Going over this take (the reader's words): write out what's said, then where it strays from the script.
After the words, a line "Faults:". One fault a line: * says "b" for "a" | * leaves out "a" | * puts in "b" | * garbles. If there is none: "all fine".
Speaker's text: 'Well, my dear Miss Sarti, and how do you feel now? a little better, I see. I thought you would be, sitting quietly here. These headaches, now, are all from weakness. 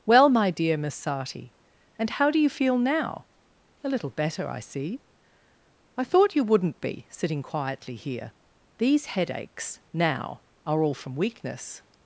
'Well, my dear Miss Sarti, and how do you feel now? a little better, I see. I thought you wouldn't be, sitting quietly here. These headaches, now, are all from weakness.
Faults:
* says "wouldn't" for "would"